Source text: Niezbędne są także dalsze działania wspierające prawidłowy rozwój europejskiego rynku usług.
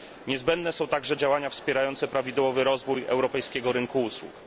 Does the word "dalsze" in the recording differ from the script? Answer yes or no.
yes